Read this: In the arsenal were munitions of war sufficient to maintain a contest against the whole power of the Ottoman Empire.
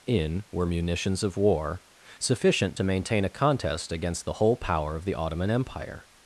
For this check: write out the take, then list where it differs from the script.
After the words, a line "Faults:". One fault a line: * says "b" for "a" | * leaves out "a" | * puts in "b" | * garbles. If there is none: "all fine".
In were munitions of war sufficient to maintain a contest against the whole power of the Ottoman Empire.
Faults:
* leaves out "the arsenal"